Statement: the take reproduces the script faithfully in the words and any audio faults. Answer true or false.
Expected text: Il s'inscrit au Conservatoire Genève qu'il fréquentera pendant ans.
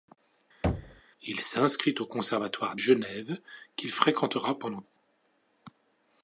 false